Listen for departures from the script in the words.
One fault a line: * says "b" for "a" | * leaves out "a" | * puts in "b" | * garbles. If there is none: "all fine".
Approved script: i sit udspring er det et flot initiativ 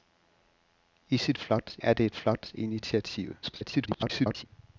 * says "flot" for "udspring"
* garbles